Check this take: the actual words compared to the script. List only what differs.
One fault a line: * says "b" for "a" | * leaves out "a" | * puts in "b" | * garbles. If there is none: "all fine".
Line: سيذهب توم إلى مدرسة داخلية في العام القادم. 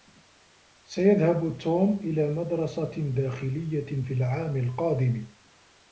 all fine